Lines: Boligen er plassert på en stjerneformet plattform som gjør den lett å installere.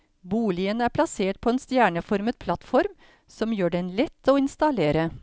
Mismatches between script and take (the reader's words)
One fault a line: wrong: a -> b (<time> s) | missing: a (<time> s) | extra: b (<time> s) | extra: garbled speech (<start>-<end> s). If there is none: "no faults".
no faults